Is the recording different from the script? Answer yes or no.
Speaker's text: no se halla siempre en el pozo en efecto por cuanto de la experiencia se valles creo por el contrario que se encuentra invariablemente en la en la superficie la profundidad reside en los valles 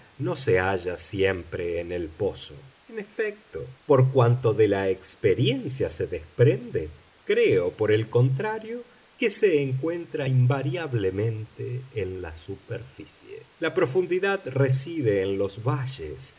yes